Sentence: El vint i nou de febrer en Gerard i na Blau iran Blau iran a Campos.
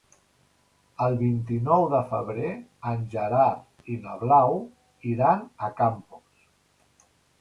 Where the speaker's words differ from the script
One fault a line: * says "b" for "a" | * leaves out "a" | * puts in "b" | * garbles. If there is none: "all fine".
* leaves out "Blau iran"